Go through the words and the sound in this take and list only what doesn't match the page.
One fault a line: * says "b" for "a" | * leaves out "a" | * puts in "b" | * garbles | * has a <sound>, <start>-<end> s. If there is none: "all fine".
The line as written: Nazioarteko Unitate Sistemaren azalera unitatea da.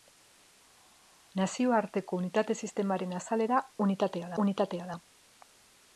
* puts in "unitatea"